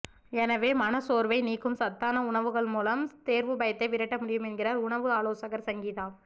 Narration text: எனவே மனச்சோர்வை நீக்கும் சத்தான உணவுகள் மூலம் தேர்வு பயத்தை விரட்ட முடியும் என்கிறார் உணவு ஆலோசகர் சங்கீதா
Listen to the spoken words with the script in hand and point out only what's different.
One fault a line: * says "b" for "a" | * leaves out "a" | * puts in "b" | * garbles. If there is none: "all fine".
all fine